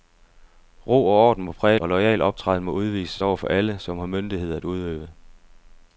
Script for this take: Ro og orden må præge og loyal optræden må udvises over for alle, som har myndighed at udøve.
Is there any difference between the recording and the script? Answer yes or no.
no